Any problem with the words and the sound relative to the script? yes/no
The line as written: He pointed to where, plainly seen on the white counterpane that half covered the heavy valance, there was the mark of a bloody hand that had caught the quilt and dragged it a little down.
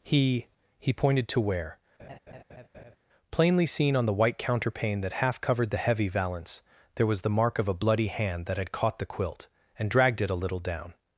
yes